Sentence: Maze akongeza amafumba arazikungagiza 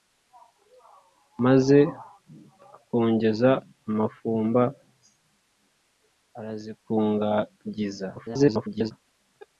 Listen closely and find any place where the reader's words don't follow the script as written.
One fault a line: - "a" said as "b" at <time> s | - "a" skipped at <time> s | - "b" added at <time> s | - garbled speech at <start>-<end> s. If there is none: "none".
- garbled speech at 8.2-8.9 s